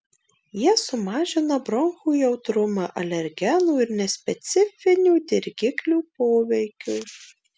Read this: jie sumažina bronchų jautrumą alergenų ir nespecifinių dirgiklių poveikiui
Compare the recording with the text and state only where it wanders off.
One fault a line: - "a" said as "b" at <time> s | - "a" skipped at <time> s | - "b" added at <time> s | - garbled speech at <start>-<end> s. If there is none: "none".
none